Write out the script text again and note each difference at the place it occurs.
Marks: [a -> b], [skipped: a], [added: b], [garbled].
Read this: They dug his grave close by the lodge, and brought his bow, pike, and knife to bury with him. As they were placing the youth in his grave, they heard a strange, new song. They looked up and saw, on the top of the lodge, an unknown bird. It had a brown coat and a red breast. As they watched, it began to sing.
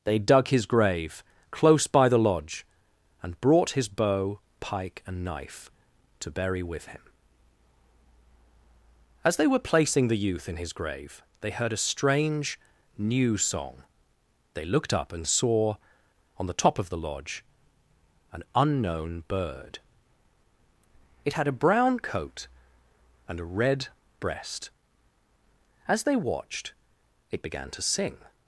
They dug his grave close by the lodge, and brought his bow, pike, and knife to bury with him. As they were placing the youth in his grave, they heard a strange, new song. They looked up and saw, on the top of the lodge, an unknown bird. It had a brown coat and a red breast. As they watched, it began to sing.